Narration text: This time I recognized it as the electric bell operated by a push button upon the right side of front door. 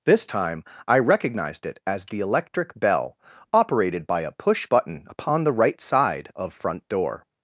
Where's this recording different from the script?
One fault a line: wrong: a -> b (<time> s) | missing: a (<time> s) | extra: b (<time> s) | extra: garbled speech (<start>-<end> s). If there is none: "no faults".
no faults